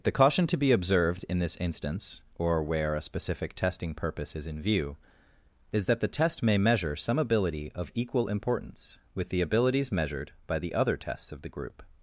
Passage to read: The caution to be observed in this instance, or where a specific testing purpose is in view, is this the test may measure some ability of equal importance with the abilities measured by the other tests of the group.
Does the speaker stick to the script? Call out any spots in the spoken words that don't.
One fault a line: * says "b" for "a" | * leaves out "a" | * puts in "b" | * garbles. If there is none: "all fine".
* says "that" for "this"